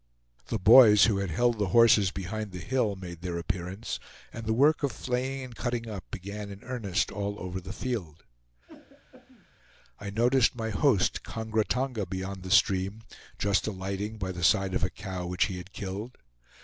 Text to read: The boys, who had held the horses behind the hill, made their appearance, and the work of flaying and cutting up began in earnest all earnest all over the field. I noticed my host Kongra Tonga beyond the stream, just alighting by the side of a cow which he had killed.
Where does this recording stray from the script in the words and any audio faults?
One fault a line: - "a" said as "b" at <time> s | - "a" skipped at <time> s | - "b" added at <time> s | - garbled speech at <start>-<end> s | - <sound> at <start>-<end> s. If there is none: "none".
- "earnest all" skipped at 7.4 s
- throat clearing at 8.7-9.5 s